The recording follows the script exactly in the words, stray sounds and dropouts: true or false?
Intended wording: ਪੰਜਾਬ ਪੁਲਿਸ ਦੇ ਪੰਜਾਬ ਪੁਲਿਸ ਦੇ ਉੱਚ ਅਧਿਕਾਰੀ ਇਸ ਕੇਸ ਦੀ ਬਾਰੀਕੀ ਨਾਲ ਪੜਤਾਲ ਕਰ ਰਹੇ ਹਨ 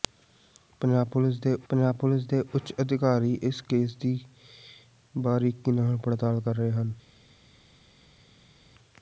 true